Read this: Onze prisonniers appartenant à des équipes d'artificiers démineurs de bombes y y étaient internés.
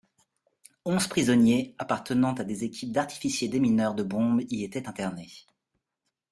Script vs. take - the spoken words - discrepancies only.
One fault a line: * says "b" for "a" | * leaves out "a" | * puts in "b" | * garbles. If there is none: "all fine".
* leaves out "y"